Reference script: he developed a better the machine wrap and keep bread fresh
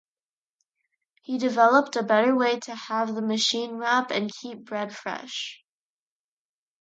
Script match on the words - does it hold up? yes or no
no